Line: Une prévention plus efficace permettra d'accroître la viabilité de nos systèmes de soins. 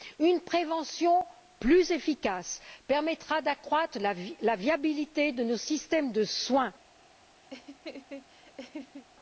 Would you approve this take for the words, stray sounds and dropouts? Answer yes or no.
no